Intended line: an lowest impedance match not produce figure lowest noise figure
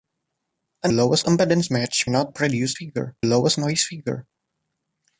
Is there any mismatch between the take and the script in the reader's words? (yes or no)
no